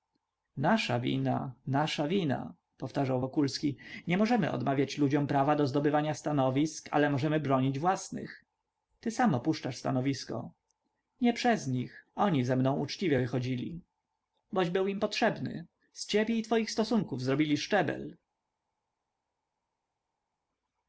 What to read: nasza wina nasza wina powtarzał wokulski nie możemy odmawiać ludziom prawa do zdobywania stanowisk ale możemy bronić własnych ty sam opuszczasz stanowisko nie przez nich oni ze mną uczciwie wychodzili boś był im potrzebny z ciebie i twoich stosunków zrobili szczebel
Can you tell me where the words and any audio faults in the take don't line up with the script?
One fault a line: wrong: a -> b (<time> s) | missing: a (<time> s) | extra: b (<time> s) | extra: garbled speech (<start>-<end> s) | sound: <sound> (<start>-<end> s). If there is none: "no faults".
no faults